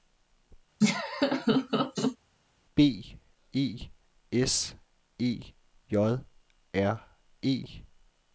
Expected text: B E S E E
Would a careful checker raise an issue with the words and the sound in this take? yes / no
yes